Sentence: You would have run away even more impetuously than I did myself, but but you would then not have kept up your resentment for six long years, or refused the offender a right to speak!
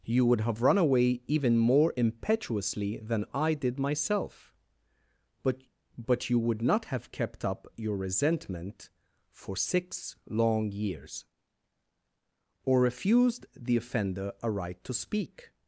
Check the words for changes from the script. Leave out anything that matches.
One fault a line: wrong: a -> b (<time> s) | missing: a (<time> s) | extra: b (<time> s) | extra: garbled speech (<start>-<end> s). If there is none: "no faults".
missing: then (6.6 s)